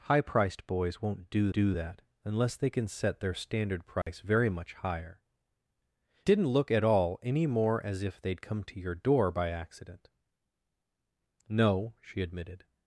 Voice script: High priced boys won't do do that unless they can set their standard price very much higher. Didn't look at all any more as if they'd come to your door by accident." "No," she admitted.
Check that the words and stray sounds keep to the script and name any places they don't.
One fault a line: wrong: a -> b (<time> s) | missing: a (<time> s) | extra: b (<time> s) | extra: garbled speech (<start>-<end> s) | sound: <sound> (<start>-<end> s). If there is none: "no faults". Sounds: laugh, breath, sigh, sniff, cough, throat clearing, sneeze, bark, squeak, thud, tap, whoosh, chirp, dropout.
sound: dropout (4.0-4.1 s)